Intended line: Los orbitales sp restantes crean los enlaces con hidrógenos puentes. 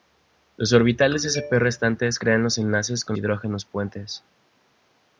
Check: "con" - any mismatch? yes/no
no